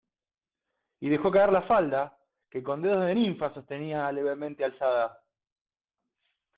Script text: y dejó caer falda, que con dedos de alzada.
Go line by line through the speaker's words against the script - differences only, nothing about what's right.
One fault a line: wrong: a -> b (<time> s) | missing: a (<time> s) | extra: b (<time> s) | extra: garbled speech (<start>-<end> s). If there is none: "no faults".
extra: la (1.5 s)
extra: ninfa sostenía levemente (3.1 s)